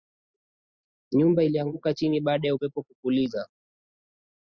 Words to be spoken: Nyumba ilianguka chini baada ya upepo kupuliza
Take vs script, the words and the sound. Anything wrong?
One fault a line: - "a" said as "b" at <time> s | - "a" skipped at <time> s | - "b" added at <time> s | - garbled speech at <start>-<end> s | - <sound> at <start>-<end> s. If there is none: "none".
none